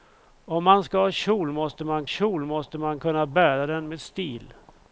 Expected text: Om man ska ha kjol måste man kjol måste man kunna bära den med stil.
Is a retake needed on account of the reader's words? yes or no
no